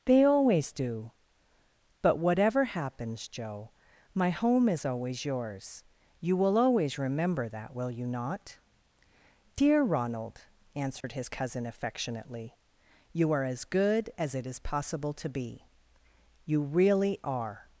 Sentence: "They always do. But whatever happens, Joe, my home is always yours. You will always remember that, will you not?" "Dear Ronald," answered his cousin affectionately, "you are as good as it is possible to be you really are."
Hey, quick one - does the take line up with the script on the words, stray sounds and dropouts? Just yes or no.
no